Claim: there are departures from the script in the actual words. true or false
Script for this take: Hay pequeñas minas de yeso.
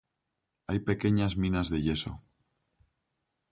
false